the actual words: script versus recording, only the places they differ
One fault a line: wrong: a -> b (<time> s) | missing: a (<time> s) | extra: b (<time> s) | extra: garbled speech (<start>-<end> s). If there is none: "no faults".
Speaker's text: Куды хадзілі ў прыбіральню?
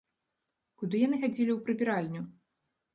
extra: яны (1.1 s)